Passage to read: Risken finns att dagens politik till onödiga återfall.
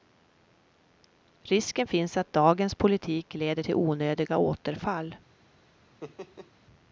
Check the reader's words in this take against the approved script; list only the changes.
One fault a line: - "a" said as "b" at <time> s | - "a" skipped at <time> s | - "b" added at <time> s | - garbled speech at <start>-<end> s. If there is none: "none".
- "leder" added at 3.3 s